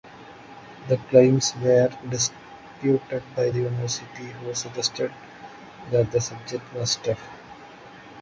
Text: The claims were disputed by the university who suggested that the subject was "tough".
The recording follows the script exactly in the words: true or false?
true